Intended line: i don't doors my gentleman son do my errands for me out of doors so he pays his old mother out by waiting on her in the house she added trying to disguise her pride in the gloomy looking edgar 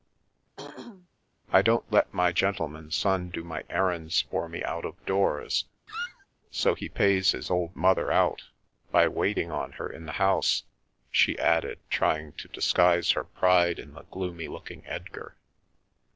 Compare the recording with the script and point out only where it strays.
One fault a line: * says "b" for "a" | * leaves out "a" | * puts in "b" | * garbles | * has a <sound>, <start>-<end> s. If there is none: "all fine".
* has a throat clearing, 0.6-1.1 s
* says "let" for "doors"
* has a squeak, 5.9-6.3 s